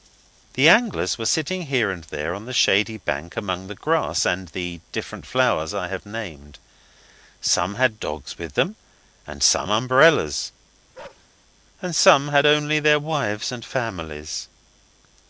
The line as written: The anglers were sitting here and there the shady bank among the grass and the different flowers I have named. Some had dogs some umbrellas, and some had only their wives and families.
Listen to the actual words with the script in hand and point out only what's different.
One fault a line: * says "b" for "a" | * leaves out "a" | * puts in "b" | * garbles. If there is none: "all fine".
* puts in "on"
* puts in "with them and"